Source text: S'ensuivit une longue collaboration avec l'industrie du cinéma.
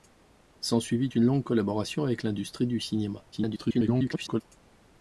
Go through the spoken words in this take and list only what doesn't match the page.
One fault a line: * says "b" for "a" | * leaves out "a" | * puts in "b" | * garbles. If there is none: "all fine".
* garbles